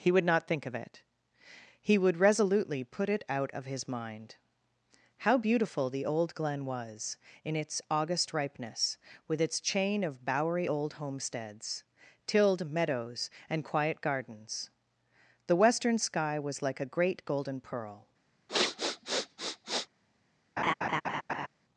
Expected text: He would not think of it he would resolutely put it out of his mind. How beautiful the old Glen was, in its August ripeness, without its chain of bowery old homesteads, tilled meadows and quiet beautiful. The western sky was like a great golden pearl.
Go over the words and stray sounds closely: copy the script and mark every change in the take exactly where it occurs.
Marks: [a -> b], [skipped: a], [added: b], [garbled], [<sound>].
He would not think of it he would resolutely put it out of his mind. How beautiful the old Glen was, in its August ripeness, [without -> with] its chain of bowery old homesteads, tilled meadows and quiet [beautiful. -> gardens] The western sky was like a great golden pearl. [sniff] [laugh]